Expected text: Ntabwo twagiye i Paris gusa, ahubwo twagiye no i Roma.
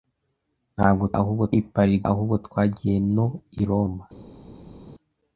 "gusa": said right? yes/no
no